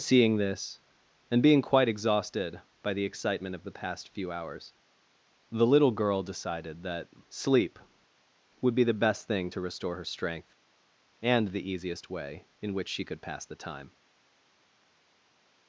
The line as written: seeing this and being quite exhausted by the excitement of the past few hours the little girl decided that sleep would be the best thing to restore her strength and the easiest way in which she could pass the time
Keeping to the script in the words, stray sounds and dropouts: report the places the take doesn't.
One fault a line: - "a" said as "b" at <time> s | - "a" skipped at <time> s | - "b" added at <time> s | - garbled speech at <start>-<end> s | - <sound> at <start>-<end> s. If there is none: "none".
none